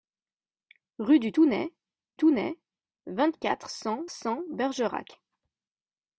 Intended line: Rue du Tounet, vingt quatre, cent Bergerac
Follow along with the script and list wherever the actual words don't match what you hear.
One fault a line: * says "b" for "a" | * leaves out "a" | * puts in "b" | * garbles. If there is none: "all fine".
* puts in "Tounet"
* puts in "cent"